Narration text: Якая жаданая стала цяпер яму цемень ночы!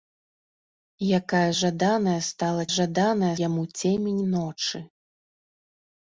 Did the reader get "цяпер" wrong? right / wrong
wrong